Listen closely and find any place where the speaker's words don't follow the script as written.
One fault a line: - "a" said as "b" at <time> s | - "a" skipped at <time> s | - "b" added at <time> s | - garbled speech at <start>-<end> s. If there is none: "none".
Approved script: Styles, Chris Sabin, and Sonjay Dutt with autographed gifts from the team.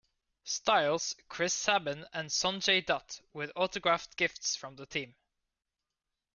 none